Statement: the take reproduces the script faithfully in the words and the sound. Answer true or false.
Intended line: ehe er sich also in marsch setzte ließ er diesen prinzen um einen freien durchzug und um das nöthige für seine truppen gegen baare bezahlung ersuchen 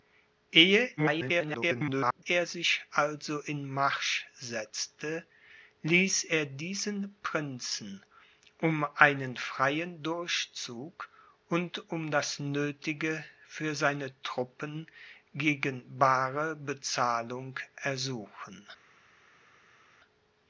false